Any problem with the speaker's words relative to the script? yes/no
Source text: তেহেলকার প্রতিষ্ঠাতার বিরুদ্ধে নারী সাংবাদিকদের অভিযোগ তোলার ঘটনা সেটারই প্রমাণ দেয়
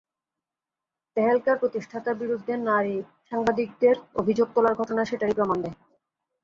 no